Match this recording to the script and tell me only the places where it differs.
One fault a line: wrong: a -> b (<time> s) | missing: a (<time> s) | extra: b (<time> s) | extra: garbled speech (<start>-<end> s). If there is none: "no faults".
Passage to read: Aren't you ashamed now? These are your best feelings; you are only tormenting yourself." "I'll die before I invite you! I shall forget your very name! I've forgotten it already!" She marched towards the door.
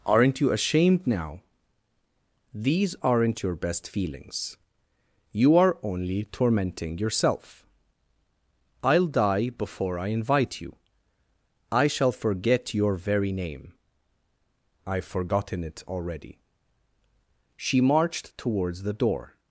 wrong: are -> aren't (3.0 s)